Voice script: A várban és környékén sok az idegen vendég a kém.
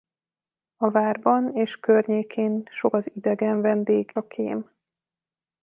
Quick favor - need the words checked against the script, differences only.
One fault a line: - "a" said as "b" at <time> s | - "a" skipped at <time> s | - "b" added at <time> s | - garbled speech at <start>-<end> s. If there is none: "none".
none